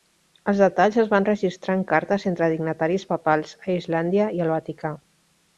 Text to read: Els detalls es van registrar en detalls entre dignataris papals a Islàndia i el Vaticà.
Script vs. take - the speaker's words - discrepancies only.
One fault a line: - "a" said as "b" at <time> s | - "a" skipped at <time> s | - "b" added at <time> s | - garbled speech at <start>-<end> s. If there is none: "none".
- "detalls" said as "cartes" at 1.9 s